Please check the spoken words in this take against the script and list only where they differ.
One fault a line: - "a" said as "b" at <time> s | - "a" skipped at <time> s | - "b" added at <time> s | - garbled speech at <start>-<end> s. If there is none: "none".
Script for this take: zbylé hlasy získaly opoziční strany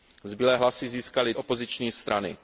none